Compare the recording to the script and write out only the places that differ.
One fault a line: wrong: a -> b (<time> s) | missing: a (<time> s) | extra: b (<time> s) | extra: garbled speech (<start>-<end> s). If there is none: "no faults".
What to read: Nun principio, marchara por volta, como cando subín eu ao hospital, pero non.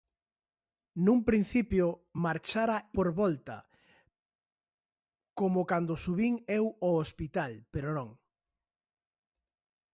no faults